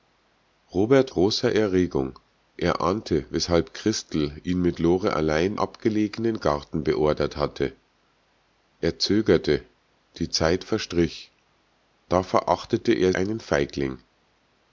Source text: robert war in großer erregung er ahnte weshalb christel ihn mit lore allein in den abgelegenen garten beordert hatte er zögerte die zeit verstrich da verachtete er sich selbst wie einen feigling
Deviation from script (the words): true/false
true